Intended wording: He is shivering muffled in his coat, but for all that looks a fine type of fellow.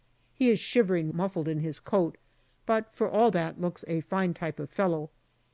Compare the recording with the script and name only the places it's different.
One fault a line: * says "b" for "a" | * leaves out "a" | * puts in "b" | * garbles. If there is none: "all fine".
all fine